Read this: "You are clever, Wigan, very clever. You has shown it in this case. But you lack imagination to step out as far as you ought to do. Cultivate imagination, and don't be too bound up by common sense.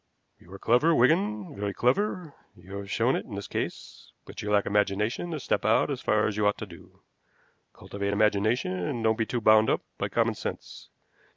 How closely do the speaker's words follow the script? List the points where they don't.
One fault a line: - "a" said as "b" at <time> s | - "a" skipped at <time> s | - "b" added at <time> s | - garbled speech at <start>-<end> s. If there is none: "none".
- "has" said as "have" at 2.8 s